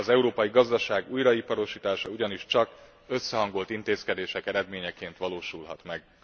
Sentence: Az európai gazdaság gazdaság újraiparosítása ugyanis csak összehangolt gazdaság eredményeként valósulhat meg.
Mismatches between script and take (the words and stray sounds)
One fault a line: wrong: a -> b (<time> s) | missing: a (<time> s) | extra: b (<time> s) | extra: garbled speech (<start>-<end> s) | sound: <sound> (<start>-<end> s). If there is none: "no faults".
missing: gazdaság (1.1 s)
wrong: gazdaság -> intézkedések (3.7 s)